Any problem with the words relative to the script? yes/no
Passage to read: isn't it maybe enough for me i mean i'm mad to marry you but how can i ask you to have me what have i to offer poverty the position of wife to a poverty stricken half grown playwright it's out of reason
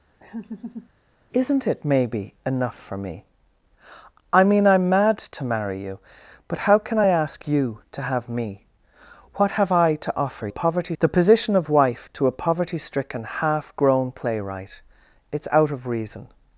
no